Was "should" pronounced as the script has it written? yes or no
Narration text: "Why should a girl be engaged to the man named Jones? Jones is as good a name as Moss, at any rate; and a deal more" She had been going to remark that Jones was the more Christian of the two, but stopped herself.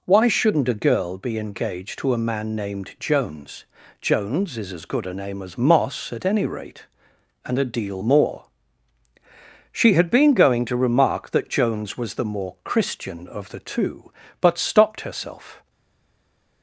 no